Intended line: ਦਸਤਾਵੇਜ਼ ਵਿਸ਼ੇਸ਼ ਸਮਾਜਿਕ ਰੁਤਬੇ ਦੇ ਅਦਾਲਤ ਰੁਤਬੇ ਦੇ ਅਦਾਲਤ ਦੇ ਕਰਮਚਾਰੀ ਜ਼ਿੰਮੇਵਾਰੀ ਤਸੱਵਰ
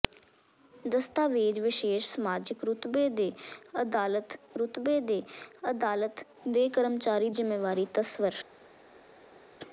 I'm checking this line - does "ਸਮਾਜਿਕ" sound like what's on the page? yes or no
yes